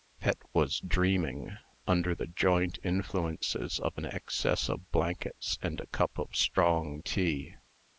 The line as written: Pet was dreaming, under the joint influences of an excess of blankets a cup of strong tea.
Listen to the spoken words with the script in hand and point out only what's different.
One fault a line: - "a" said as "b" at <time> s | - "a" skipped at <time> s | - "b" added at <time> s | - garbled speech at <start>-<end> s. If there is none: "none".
- "and" added at 5.6 s